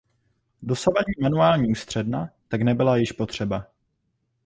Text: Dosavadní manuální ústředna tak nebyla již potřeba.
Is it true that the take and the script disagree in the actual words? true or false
false